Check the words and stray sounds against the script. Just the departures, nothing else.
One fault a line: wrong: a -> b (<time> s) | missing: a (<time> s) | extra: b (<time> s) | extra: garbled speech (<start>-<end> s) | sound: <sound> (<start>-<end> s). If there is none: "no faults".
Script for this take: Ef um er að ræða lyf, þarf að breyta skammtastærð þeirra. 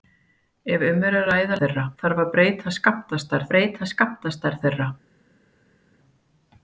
wrong: lyf -> þeirra (1.6 s)
extra: breyta skammtastærð (3.5 s)